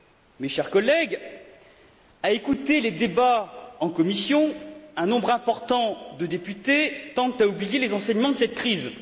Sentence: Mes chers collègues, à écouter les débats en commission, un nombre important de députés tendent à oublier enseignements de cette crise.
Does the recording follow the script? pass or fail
fail